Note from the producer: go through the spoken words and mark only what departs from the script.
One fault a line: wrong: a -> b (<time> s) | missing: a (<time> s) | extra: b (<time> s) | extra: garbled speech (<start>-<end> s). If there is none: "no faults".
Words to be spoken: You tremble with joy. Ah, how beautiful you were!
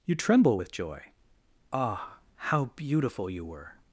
no faults